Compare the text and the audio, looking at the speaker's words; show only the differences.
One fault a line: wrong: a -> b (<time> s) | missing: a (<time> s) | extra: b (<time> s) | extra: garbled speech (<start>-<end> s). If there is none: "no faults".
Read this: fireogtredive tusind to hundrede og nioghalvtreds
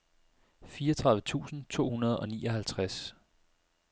no faults